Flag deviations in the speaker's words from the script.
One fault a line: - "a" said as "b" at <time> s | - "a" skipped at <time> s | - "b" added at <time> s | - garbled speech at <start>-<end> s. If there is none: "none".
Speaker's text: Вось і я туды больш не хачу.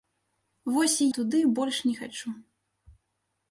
- "я" skipped at 1.1 s